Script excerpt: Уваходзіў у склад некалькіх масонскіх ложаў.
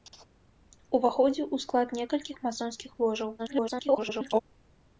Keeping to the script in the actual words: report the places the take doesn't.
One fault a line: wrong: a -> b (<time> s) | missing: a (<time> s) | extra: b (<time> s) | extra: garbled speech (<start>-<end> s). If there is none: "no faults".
extra: garbled speech (3.4-4.4 s)